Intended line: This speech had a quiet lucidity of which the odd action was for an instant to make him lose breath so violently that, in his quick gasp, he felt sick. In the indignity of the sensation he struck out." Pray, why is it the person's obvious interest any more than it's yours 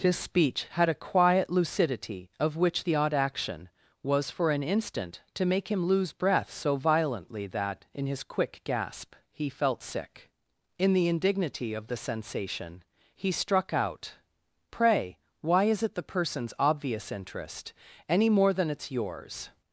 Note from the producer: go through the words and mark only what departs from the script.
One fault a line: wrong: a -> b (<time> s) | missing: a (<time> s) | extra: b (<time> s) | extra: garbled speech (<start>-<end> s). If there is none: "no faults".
wrong: This -> His (0.0 s)